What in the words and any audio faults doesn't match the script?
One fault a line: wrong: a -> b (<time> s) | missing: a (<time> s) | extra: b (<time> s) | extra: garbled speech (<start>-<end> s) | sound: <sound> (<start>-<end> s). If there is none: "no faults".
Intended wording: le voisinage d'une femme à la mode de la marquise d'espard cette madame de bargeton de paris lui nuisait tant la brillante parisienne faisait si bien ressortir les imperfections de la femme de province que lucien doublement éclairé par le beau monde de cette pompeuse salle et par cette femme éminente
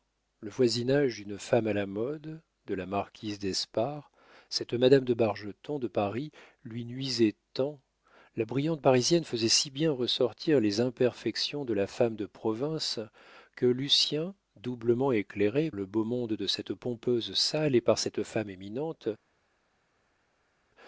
missing: par (15.7 s)